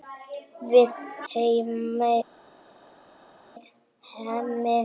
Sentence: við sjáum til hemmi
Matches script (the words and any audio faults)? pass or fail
fail